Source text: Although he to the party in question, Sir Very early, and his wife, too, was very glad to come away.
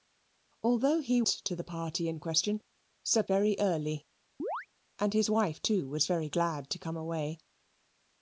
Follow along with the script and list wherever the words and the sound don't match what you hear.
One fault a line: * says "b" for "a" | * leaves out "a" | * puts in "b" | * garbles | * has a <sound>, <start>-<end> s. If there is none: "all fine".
* has a chirp, 4.4-4.7 s